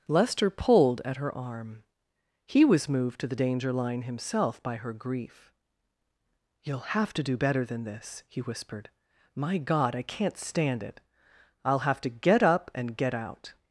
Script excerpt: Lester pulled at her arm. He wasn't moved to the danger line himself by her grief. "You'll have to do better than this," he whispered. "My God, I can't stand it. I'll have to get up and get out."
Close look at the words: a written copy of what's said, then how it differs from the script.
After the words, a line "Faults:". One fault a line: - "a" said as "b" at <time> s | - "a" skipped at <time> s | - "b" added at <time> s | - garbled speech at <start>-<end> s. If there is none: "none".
Lester pulled at her arm. He was moved to the danger line himself by her grief. "You'll have to do better than this," he whispered. "My God, I can't stand it. I'll have to get up and get out."
Faults:
- "wasn't" said as "was" at 2.6 s